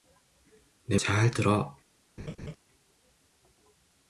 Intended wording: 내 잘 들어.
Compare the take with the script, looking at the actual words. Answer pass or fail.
pass